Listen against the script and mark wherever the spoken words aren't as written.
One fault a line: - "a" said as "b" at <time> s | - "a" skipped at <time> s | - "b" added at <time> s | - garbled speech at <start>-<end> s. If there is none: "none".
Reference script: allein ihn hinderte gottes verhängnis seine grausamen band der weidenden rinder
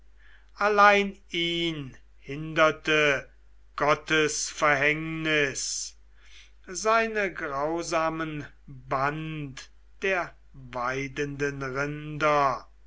none